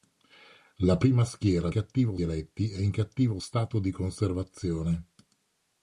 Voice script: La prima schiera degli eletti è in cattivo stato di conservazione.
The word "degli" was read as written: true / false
false